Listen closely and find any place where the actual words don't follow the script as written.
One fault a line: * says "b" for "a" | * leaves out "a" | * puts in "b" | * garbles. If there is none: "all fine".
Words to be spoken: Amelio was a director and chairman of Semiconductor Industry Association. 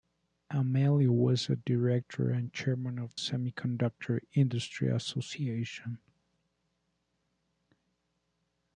all fine